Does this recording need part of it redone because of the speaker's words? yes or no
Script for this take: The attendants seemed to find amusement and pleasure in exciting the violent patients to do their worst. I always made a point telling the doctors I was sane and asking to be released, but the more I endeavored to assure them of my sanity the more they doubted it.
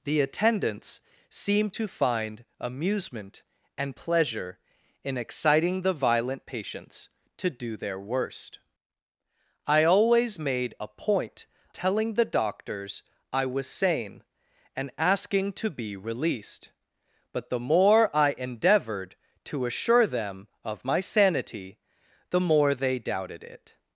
no